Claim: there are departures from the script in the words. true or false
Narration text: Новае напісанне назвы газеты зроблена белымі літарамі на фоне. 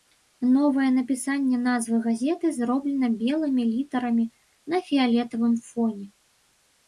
true